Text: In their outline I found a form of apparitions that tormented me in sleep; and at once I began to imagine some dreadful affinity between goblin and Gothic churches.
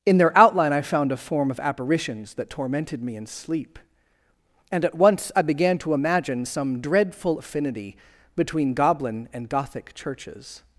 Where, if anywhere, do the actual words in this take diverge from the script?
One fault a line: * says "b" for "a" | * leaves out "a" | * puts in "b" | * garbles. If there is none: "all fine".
all fine